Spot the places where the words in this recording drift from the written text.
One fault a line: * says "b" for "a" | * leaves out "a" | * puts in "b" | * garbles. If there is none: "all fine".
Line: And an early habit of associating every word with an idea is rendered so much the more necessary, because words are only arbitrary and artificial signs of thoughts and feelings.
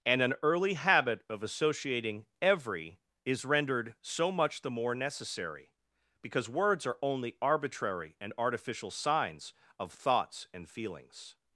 * leaves out "word with an idea"